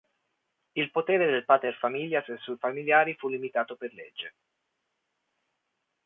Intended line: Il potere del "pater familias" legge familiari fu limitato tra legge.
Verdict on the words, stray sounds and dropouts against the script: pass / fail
fail